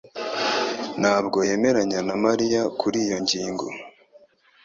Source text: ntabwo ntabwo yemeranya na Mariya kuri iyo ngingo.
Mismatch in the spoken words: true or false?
true